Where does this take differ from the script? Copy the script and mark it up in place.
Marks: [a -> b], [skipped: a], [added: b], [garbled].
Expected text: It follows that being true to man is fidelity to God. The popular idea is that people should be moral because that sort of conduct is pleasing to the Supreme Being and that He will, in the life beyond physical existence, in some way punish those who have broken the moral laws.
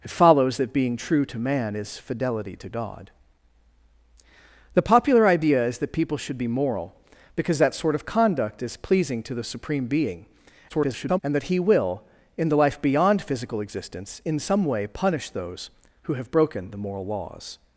It follows that being true to man is fidelity to God. The popular idea is that people should be moral because that sort of conduct is pleasing to the Supreme Being [garbled] and that He will, in the life beyond physical existence, in some way punish those who have broken the moral laws.